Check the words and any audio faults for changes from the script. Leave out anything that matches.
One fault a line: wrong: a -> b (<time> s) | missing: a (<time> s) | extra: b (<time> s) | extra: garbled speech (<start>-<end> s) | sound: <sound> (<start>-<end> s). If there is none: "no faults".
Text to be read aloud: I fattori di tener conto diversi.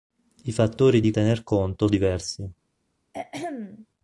sound: throat clearing (3.1-3.9 s)